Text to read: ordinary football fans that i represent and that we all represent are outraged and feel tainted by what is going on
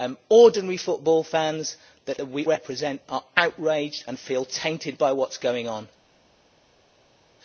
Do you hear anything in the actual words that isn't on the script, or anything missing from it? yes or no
yes